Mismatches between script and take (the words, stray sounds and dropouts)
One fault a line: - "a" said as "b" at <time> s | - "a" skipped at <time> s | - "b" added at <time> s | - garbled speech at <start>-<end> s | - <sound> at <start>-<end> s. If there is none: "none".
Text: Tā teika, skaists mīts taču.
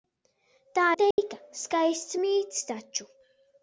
- dropout at 1.1-1.2 s